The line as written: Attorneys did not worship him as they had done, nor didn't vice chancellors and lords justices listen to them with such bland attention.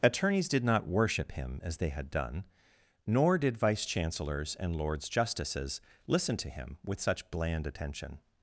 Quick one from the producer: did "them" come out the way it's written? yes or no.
no